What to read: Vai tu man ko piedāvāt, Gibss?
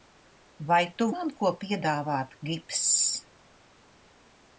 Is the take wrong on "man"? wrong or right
right